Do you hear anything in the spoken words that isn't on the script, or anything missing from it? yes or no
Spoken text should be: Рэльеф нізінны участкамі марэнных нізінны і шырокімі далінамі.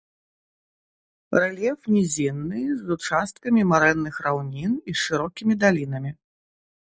yes